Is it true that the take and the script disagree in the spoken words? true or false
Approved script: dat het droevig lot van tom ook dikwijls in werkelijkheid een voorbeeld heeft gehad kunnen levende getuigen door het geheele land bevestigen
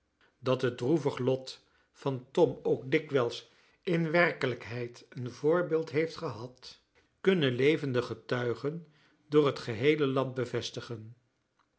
false